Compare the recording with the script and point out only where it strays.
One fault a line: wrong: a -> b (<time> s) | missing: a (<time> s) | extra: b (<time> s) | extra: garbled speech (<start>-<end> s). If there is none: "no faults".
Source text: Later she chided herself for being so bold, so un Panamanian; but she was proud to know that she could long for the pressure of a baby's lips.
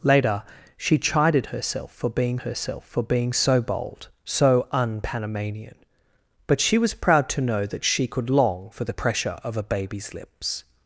extra: herself for being (2.4 s)